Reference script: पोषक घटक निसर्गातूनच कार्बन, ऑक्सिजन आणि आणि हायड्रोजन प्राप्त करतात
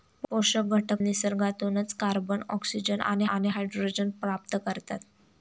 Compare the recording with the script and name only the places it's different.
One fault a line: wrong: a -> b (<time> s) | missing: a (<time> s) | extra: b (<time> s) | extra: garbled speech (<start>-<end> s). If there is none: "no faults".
no faults